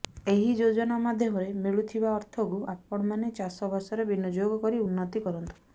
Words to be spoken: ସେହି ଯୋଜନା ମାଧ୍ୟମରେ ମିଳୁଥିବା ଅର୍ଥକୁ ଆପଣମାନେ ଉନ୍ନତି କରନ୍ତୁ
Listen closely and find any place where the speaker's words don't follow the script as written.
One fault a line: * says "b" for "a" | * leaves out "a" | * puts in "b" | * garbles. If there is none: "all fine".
* says "ଏହି" for "ସେହି"
* puts in "ଚାଷବାସରେ ବିନିଯୋଗ କରି"